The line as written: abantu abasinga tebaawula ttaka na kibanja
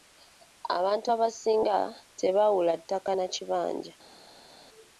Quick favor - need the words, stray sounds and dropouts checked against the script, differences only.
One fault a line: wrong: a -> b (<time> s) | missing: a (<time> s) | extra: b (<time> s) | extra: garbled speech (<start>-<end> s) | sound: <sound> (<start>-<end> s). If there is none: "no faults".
no faults